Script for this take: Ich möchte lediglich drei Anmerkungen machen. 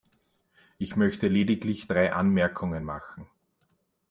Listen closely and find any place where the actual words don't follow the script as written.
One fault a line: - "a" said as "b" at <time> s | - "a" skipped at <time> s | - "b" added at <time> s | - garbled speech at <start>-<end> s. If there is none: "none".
none